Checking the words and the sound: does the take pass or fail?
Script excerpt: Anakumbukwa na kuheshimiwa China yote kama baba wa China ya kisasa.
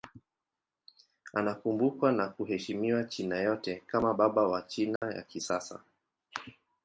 fail